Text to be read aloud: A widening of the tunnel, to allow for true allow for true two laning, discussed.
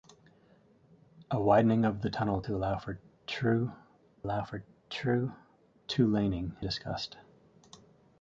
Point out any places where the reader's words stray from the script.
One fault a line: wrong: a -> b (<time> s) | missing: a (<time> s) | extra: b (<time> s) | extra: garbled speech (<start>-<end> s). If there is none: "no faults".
no faults